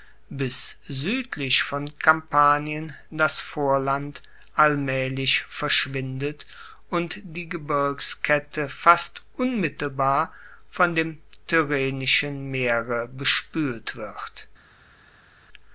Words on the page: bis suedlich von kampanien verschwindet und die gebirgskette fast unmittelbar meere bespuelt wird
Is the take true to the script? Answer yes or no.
no